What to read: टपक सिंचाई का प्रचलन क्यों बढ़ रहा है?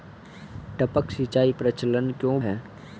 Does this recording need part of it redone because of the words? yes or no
yes